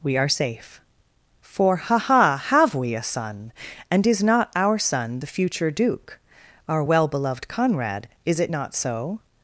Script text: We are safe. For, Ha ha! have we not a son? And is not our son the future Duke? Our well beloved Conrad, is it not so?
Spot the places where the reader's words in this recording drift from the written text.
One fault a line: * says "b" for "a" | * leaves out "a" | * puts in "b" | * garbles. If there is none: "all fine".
* leaves out "not"